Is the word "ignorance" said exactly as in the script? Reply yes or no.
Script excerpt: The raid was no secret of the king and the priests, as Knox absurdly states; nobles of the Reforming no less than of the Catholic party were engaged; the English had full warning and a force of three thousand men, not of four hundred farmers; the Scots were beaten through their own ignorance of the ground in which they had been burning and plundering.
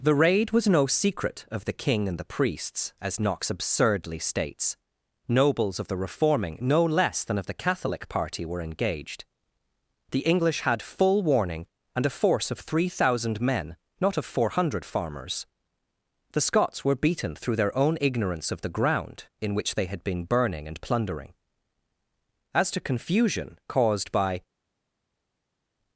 yes